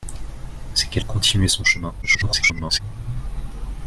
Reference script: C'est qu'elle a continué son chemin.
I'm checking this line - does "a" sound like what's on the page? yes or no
no